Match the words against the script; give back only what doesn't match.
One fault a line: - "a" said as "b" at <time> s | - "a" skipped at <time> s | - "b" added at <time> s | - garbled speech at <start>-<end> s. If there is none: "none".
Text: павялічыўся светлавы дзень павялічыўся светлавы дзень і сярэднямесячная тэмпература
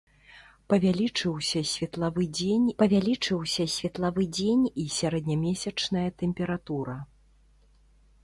none